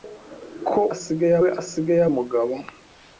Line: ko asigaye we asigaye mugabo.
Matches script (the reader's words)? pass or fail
pass